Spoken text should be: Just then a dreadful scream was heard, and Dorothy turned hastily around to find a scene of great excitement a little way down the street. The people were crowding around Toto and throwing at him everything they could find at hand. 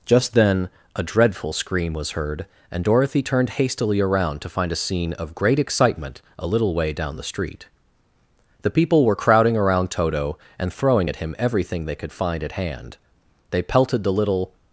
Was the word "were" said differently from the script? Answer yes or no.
no